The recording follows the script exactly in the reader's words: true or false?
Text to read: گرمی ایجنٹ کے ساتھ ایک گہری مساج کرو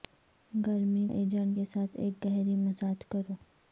true